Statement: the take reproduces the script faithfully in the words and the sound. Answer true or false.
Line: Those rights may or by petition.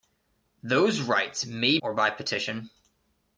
true